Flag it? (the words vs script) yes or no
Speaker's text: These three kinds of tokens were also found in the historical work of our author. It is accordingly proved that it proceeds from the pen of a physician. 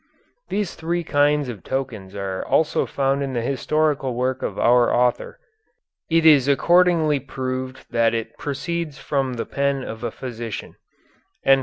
yes